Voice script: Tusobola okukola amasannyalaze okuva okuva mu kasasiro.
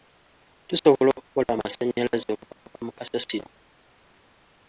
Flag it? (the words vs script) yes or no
no